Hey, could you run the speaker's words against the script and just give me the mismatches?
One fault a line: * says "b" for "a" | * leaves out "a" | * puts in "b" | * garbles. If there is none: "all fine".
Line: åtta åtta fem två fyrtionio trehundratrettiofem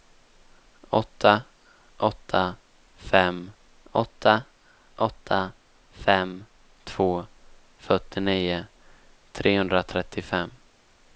* puts in "åtta åtta fem"